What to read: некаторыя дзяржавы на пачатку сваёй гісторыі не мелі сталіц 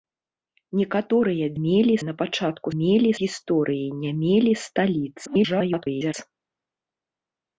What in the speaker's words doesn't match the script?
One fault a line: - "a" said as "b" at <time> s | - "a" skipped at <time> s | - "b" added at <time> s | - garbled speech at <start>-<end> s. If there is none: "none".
- "дзяржавы" said as "мелі" at 1.6 s
- "сваёй" said as "мелі" at 2.8 s
- garbled speech at 5.3-6.1 s